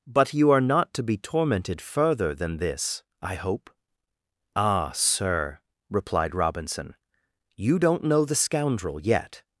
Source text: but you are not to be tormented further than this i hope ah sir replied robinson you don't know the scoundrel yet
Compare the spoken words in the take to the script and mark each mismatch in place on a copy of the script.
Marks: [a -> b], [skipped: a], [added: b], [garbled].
but you are not to be tormented further than this i hope ah sir replied robinson you don't know the scoundrel yet